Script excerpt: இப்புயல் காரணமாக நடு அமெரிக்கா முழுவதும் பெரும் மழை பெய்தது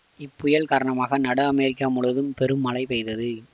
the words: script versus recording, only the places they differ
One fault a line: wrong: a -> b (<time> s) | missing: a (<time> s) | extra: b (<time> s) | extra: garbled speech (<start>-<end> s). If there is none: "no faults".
no faults